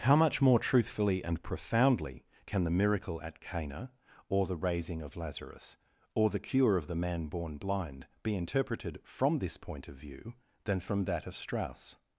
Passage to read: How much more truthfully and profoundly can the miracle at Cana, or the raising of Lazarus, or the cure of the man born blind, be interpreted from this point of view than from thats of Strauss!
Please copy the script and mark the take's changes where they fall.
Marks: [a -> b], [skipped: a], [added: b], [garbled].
How much more truthfully and profoundly can the miracle at Cana, or the raising of Lazarus, or the cure of the man born blind, be interpreted from this point of view than from [thats -> that] of Strauss!